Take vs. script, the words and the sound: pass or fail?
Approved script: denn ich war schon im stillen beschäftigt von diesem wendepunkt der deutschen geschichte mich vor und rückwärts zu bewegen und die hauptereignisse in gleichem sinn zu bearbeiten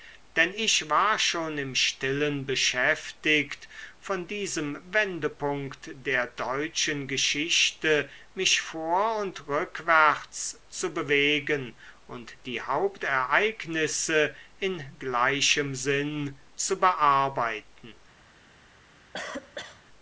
fail